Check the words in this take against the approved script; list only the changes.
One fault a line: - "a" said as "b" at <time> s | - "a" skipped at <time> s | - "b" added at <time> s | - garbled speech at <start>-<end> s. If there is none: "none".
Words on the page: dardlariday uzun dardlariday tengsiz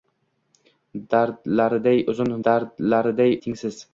none